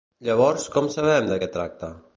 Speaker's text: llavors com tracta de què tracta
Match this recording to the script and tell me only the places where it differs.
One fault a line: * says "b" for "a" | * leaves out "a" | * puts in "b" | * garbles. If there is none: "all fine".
* says "sabem" for "tracta"